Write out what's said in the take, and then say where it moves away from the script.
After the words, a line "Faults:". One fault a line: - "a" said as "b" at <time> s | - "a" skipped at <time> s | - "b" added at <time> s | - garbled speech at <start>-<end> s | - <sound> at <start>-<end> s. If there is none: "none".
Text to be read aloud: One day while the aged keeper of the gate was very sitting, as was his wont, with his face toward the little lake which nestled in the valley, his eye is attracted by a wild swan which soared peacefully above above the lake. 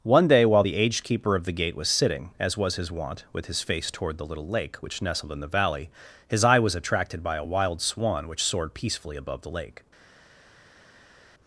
One day while the aged keeper of the gate was sitting, as was his wont, with his face toward the little lake which nestled in the valley, his eye was attracted by a wild swan which soared peacefully above the lake.
Faults:
- "very" skipped at 1.9 s
- "is" said as "was" at 6.6 s
- "above" skipped at 9.4 s